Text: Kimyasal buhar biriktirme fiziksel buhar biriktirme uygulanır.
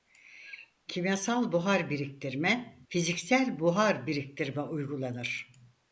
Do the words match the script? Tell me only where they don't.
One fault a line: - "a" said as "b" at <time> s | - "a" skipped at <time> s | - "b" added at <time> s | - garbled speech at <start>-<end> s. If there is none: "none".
none